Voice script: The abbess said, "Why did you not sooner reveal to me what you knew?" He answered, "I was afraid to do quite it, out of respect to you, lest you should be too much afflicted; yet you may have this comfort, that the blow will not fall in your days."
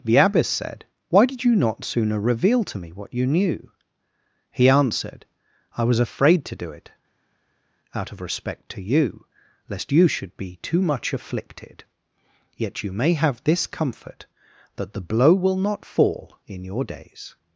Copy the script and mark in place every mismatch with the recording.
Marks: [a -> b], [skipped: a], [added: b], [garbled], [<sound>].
The abbess said, "Why did you not sooner reveal to me what you knew?" He answered, "I was afraid to do [skipped: quite] it, out of respect to you, lest you should be too much afflicted; yet you may have this comfort, that the blow will not fall in your days."